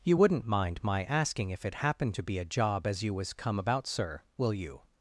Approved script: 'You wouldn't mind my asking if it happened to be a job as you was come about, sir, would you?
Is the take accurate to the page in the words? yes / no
no